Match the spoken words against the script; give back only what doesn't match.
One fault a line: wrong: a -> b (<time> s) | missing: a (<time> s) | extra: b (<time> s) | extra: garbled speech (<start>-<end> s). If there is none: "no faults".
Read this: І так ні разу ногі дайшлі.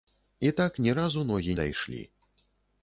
no faults